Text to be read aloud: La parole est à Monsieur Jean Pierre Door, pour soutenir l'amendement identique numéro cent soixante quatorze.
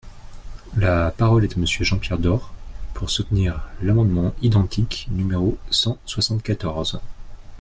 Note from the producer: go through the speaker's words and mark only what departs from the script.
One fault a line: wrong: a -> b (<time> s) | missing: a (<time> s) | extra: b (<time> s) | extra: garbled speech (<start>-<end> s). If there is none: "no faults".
no faults